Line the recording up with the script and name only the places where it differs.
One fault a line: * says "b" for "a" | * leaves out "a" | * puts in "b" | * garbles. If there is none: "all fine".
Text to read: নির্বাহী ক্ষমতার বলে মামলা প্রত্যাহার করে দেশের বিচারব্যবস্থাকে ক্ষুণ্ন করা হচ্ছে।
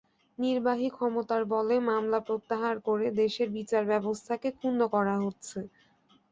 all fine